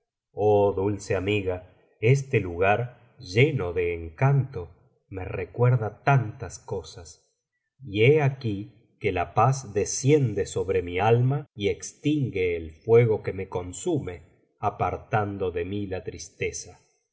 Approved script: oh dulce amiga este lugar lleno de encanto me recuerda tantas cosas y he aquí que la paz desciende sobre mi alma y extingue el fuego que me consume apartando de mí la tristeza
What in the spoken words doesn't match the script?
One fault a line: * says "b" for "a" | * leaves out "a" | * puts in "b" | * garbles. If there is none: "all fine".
all fine